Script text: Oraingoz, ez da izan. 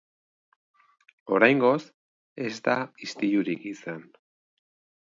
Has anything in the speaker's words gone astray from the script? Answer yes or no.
yes